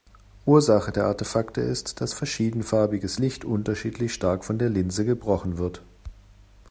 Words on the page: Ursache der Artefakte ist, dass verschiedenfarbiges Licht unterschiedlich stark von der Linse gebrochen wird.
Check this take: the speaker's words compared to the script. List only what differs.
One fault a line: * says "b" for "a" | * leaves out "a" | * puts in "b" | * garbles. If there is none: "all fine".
all fine